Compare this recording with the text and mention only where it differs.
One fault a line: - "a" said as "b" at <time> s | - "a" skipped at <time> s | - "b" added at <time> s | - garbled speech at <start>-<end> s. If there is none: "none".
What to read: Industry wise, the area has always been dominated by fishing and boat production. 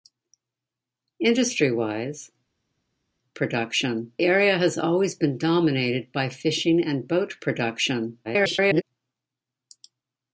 - "the" said as "production" at 3.3 s
- garbled speech at 8.2-8.8 s